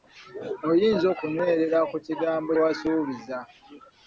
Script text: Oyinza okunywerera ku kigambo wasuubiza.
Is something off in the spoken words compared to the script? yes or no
no